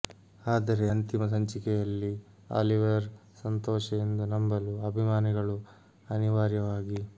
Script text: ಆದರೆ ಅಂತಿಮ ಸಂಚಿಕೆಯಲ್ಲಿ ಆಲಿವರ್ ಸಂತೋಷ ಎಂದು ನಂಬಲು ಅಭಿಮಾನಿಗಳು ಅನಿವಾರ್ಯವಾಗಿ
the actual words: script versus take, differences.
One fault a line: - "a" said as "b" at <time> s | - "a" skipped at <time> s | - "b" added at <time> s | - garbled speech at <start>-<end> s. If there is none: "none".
none